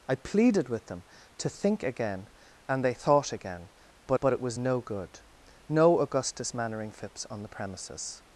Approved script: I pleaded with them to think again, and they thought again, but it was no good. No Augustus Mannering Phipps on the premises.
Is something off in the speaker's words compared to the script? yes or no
yes